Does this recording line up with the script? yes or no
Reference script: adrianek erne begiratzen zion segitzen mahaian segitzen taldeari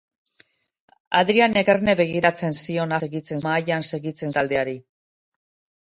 yes